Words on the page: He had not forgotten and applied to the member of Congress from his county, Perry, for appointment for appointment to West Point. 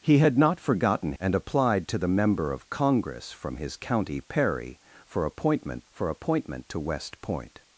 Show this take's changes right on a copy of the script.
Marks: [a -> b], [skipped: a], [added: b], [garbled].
He had not forgotten and applied to the member of Congress from his county, Perry, for appointment for appointment to West Point.